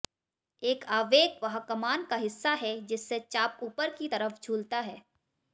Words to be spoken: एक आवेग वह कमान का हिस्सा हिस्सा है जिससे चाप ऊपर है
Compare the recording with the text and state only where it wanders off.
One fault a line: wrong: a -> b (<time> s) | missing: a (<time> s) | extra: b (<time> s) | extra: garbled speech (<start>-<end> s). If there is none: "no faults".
missing: हिस्सा (2.5 s)
extra: की तरफ झूलता (3.9 s)